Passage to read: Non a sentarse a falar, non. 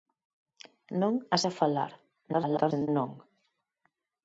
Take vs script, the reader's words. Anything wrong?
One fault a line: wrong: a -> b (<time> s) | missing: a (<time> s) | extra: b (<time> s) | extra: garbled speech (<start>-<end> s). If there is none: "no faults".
missing: sentarse (1.4 s)
extra: garbled speech (2.3-2.9 s)